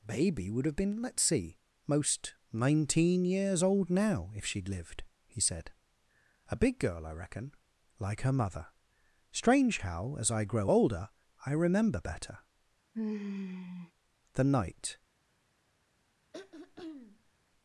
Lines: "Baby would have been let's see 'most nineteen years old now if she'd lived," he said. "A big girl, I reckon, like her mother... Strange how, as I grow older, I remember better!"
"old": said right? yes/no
yes